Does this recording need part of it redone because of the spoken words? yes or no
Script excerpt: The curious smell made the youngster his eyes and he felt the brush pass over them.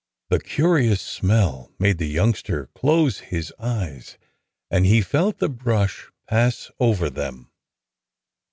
yes